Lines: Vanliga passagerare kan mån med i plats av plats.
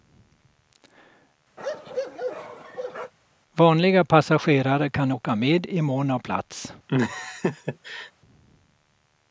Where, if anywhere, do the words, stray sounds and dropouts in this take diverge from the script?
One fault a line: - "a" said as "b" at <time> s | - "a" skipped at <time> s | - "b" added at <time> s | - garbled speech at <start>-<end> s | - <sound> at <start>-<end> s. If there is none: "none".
- bark at 1.6-3.1 s
- "mån" said as "åka" at 5.1 s
- "plats" said as "mån" at 5.8 s
- laugh at 6.9-8.1 s